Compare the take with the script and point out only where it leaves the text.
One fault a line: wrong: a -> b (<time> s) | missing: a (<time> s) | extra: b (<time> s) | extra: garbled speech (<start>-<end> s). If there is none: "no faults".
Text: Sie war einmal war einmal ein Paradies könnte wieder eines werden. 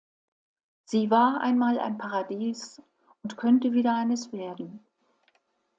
missing: war einmal (1.8 s)
extra: und (3.2 s)